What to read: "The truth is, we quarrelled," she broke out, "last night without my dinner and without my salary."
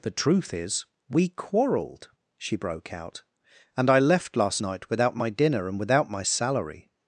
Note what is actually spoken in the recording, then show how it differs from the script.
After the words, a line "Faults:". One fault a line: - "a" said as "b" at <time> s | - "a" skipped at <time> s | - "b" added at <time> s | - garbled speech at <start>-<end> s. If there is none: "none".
"The truth is, we quarrelled," she broke out, "and I left last night without my dinner and without my salary."
Faults:
- "and I left" added at 3.8 s